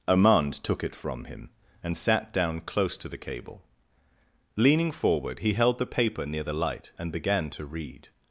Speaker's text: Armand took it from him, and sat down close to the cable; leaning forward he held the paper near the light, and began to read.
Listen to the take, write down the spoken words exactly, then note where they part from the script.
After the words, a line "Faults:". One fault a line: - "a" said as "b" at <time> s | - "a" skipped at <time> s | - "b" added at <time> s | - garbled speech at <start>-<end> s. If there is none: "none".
Armand took it from him, and sat down close to the cable; leaning forward he held the paper near the light, and began to read.
Faults:
none